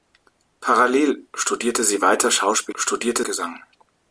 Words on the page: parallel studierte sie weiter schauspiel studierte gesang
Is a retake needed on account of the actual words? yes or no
no